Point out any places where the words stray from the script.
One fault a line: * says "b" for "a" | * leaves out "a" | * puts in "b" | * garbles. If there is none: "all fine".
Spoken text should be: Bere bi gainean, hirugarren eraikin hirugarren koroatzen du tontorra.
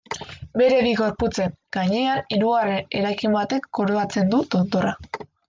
* puts in "gorputzen"
* says "batek" for "hirugarren"